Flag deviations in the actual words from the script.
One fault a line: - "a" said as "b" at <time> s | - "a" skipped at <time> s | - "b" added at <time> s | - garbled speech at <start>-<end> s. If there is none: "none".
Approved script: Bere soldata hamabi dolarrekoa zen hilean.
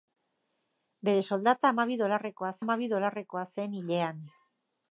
- "hamabi dolarrekoa" added at 2.6 s